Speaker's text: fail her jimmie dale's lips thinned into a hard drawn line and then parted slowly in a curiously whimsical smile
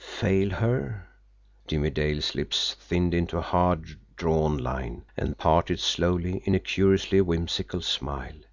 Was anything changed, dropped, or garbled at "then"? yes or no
yes